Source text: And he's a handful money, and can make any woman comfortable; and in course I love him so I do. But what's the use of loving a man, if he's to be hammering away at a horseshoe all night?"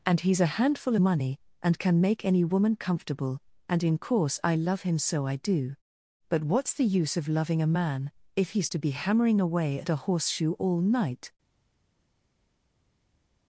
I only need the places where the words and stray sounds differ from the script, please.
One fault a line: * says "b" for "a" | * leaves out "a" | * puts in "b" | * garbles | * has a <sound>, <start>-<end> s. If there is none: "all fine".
all fine